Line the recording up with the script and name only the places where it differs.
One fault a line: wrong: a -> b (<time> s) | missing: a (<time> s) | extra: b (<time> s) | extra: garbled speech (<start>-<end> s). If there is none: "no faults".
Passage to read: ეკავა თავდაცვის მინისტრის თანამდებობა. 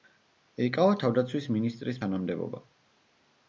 no faults